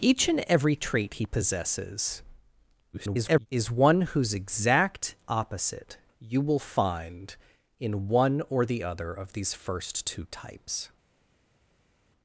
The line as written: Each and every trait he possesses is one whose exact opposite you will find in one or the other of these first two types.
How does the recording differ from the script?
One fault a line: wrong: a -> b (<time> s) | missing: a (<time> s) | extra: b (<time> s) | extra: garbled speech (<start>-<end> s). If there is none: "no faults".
extra: garbled speech (2.9-3.5 s)